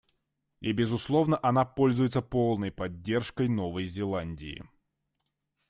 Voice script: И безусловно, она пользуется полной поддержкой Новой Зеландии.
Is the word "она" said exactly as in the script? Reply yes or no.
yes